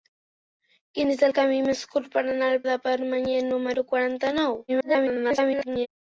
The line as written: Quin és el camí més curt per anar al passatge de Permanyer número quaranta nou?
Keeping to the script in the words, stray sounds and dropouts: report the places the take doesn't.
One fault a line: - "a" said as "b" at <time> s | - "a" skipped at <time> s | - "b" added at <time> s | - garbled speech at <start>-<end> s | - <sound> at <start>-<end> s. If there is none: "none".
- "passatge" skipped at 2.6 s
- garbled speech at 4.7-5.9 s